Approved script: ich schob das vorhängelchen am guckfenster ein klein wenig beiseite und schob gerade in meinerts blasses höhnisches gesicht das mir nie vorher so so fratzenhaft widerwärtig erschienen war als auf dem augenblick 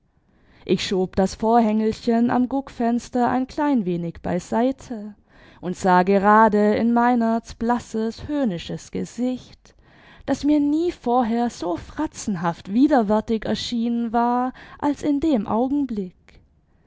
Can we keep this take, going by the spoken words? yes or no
no